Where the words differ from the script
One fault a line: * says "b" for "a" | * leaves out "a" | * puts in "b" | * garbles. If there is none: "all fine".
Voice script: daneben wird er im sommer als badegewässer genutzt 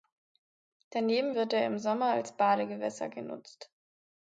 all fine